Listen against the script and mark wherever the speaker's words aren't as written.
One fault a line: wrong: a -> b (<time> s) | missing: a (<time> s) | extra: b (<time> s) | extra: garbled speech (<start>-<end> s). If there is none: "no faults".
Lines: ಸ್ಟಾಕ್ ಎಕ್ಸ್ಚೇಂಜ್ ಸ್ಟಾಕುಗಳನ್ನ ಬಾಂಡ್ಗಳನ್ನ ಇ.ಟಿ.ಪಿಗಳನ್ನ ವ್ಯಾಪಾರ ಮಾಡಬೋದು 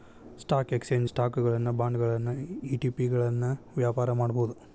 no faults